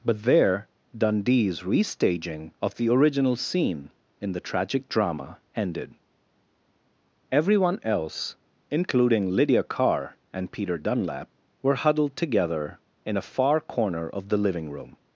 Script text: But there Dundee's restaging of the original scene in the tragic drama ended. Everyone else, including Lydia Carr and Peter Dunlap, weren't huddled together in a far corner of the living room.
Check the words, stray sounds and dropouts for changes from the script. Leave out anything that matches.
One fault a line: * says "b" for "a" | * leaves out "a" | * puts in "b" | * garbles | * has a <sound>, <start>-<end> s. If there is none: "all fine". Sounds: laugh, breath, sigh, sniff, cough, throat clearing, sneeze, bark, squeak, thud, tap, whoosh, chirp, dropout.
* says "were" for "weren't"